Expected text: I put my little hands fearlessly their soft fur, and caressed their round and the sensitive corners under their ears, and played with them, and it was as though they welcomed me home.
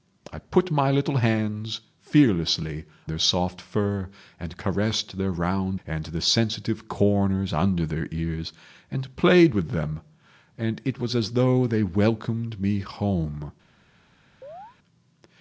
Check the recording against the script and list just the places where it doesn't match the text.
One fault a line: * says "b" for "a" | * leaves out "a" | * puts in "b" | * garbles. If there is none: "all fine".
all fine